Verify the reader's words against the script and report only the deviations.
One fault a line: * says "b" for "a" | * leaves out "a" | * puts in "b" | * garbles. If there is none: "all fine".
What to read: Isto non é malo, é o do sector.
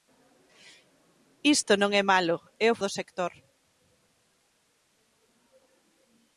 all fine